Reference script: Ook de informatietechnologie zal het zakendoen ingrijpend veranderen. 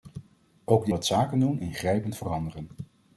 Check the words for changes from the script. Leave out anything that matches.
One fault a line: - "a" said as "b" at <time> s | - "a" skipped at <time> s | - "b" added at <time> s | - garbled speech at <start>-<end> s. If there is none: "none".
- "informatietechnologie zal" skipped at 0.9 s